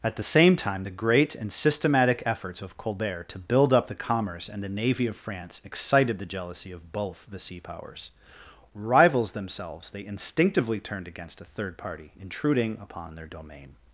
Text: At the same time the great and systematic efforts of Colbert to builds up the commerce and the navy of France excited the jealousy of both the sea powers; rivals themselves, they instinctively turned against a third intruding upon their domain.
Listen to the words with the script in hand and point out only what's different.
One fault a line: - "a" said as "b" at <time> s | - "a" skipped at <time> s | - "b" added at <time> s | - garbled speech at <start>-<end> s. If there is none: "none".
- "builds" said as "build" at 3.4 s
- "party" added at 11.8 s